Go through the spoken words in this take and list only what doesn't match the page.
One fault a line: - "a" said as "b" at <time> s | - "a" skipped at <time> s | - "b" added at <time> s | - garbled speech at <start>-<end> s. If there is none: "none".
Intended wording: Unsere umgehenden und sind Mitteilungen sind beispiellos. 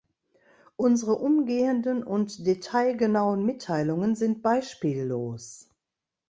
- "sind" said as "detailgenauen" at 2.5 s